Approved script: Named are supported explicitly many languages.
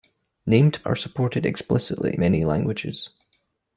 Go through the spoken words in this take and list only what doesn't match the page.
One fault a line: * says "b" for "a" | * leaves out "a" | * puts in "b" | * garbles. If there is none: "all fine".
all fine